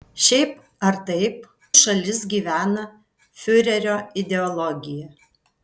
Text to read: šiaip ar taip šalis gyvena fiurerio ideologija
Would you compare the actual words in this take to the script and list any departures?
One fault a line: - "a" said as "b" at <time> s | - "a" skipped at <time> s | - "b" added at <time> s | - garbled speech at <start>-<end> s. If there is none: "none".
none